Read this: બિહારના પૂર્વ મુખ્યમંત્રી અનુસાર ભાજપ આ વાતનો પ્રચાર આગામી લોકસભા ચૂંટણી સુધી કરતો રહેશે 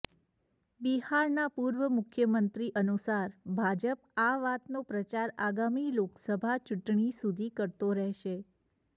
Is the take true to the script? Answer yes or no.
yes